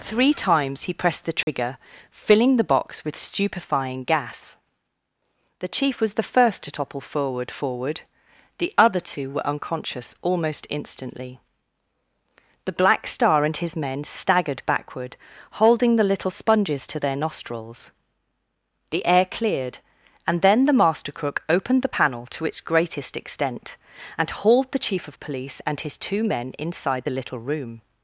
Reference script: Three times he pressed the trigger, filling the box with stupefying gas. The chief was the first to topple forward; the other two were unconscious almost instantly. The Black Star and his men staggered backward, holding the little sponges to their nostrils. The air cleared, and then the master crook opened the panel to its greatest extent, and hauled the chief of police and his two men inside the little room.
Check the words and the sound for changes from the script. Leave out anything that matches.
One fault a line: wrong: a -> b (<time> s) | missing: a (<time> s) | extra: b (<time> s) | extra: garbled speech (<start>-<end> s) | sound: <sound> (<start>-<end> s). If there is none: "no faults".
sound: dropout (1.4-1.5 s)
extra: forward (7.5 s)